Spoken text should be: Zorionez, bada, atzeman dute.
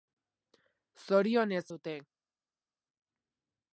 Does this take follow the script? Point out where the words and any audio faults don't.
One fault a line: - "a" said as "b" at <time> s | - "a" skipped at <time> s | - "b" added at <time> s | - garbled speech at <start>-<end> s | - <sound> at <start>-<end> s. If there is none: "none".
- "bada atzeman" skipped at 1.7 s